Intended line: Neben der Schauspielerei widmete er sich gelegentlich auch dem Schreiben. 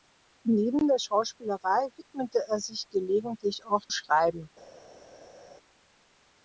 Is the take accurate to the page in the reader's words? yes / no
no